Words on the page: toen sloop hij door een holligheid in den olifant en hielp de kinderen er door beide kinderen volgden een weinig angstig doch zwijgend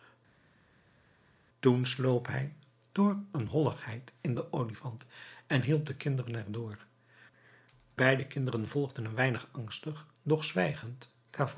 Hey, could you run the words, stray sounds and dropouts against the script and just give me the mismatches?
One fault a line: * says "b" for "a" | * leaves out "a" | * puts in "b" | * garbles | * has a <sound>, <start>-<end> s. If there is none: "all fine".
all fine